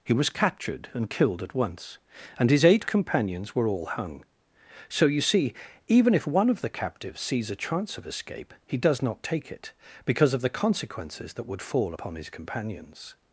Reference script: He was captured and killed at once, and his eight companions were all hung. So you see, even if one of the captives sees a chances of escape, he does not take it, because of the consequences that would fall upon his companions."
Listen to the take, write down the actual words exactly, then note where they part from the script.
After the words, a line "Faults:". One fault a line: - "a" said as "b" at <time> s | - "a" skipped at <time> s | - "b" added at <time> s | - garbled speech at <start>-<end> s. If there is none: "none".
He was captured and killed at once, and his eight companions were all hung. So you see, even if one of the captives sees a chance of escape, he does not take it, because of the consequences that would fall upon his companions."
Faults:
- "chances" said as "chance" at 7.5 s